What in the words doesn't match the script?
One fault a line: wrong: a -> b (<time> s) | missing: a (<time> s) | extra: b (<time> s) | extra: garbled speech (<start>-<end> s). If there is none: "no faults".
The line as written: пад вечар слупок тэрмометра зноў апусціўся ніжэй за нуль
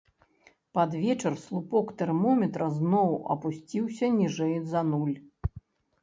no faults